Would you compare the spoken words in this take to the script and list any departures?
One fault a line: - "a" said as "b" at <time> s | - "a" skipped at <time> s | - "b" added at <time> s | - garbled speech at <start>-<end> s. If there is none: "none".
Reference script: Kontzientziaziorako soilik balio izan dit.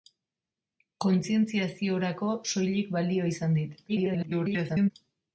- garbled speech at 3.9-4.9 s